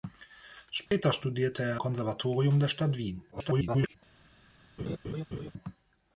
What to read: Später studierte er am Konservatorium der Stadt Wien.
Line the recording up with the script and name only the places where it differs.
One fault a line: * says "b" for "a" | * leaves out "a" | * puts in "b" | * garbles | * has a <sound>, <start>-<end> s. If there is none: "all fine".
* has a dropout, 0.9-0.9 s
* leaves out "am"
* garbles
* has a laugh, 4.8-5.5 s